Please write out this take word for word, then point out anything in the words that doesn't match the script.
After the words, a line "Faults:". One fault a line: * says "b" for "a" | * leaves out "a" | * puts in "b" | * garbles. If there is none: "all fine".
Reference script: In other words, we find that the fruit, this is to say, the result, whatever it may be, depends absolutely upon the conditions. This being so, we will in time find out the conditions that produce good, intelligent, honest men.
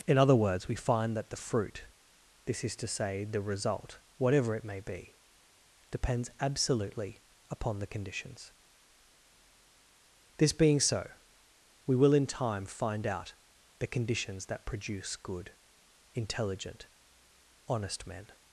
In other words, we find that the fruit, this is to say, the result, whatever it may be, depends absolutely upon the conditions. This being so, we will in time find out the conditions that produce good, intelligent, honest men.
Faults:
all fine